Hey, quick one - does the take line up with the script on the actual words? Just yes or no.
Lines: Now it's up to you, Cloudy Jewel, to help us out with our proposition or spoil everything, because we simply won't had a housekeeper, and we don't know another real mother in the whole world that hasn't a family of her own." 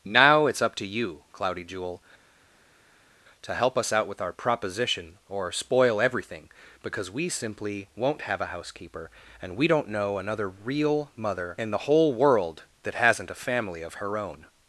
no